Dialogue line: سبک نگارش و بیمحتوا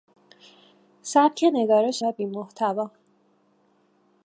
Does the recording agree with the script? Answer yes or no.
yes